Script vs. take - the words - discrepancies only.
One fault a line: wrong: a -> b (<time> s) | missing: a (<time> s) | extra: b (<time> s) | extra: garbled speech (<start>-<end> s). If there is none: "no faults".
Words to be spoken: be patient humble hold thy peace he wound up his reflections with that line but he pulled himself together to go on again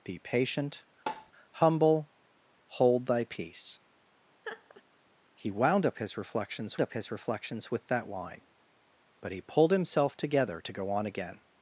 extra: up his reflections (6.8 s)